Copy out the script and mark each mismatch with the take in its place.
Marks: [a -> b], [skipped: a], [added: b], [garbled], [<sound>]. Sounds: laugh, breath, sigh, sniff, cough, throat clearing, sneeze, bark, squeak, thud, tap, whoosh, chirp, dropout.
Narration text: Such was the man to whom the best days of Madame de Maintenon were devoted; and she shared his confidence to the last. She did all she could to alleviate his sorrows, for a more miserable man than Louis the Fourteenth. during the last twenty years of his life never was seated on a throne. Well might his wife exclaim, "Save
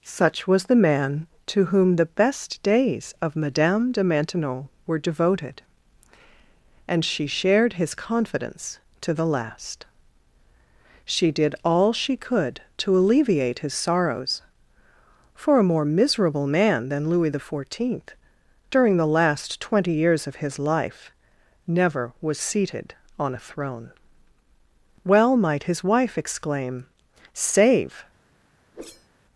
Such was the man to whom the best days of Madame de Maintenon were devoted; and she shared his confidence to the last. She did all she could to alleviate his sorrows, for a more miserable man than Louis the Fourteenth. during the last twenty years of his life never was seated on a throne. Well might his wife exclaim, "Save [whoosh]